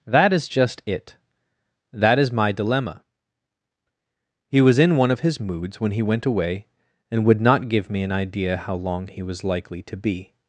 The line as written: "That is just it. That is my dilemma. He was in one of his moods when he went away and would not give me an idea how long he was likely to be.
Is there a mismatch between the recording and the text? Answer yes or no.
no